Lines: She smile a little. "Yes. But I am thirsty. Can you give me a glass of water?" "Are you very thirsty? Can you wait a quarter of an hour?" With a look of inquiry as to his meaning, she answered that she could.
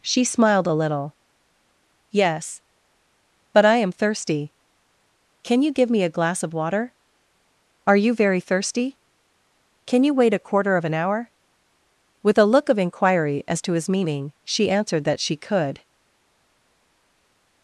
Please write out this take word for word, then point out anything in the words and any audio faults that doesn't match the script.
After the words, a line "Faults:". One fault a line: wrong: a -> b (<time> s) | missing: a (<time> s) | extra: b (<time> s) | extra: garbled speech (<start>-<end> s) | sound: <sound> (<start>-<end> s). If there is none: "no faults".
She smiled a little. "Yes. But I am thirsty. Can you give me a glass of water?" "Are you very thirsty? Can you wait a quarter of an hour?" With a look of inquiry as to his meaning, she answered that she could.
Faults:
wrong: smile -> smiled (0.2 s)